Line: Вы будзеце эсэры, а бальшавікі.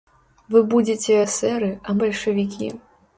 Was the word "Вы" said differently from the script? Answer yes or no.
no